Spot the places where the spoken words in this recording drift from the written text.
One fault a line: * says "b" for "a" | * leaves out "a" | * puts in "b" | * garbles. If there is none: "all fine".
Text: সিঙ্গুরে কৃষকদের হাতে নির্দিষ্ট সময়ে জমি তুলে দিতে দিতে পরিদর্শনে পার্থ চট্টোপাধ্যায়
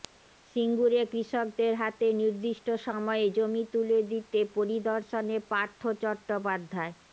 * leaves out "দিতে"